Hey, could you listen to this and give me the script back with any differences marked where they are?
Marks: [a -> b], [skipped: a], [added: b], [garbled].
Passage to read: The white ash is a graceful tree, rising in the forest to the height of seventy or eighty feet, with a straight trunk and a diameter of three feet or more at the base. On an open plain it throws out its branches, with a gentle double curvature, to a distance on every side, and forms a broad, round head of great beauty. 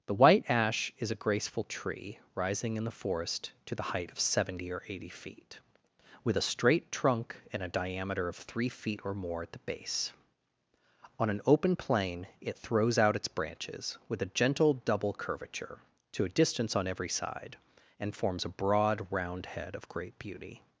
The white ash is a graceful tree, rising in the forest to the height of seventy or eighty feet, with a straight trunk and a diameter of three feet or more at the base. On an open plain it throws out its branches, with a gentle double curvature, to a distance on every side, and forms a broad, round head of great beauty.